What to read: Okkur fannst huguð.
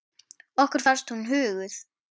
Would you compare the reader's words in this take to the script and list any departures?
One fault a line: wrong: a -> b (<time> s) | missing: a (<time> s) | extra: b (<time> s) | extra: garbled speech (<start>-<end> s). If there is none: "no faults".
extra: hún (1.1 s)